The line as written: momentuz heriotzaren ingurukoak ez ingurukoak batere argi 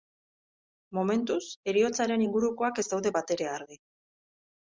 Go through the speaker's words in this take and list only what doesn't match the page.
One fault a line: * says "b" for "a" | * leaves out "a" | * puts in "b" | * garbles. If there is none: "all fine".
* says "daude" for "ingurukoak"